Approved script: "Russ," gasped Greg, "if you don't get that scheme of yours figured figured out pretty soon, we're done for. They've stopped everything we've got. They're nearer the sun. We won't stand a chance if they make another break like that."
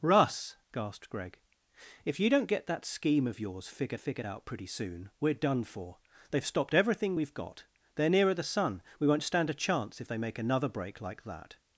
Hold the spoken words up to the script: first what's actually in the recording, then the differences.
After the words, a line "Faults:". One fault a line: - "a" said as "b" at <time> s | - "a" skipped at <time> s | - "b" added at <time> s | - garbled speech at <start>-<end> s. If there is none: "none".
"Russ," gasped Greg, "if you don't get that scheme of yours figured figured out pretty soon, we're done for. They've stopped everything we've got. They're nearer the sun. We won't stand a chance if they make another break like that."
Faults:
none